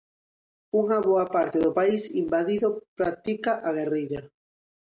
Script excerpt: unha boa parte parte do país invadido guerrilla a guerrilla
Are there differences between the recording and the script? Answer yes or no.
yes